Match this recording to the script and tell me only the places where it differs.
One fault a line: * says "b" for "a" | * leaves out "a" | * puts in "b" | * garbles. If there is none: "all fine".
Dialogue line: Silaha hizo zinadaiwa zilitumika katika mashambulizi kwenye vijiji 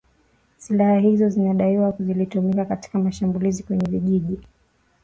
all fine